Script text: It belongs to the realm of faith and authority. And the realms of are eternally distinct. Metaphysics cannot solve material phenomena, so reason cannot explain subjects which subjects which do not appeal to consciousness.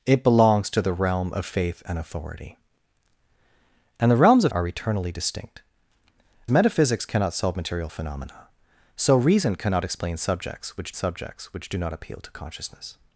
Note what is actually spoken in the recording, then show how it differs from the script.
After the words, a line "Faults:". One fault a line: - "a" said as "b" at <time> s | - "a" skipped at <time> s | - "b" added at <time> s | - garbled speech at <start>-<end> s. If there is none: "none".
It belongs to the realm of faith and authority. And the realms of are eternally distinct. Metaphysics cannot solve material phenomena, so reason cannot explain subjects which subjects which do not appeal to consciousness.
Faults:
none